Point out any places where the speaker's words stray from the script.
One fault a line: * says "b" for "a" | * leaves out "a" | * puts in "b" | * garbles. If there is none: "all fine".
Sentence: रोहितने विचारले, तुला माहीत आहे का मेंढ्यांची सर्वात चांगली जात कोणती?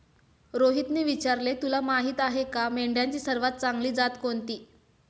all fine